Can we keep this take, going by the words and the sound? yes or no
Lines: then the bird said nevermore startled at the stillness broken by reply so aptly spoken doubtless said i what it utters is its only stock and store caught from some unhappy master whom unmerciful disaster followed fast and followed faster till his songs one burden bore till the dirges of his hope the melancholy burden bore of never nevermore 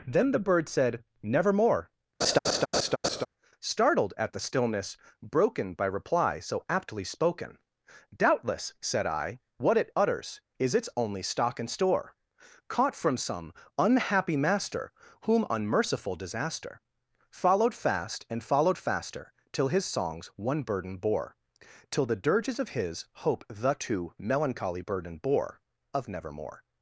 no